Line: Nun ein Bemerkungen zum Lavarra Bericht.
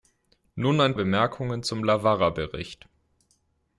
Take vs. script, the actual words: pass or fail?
pass